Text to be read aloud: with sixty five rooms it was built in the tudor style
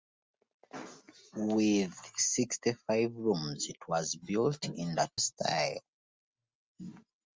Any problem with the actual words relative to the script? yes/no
yes